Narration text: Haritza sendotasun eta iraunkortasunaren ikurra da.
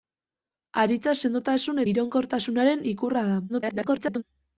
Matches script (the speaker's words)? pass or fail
fail